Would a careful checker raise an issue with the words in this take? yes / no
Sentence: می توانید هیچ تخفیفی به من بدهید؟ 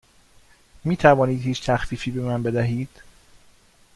no